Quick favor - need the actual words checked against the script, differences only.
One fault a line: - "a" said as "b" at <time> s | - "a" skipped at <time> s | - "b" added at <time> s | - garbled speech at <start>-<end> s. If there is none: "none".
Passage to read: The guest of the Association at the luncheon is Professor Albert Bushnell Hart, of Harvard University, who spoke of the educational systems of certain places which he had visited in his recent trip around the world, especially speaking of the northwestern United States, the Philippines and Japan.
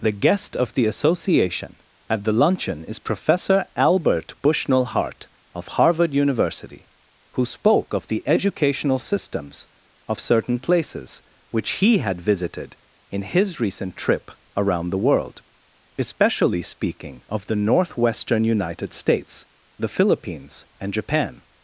none